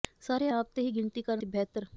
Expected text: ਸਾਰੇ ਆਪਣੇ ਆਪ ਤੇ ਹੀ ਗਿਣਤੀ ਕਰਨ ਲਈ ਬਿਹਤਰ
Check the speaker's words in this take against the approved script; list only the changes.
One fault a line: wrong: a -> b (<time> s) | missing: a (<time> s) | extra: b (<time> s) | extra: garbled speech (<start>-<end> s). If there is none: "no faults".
missing: ਆਪਣੇ (0.5 s)
missing: ਲਈ (1.4 s)